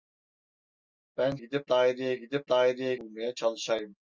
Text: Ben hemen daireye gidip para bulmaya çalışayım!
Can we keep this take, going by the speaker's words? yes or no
no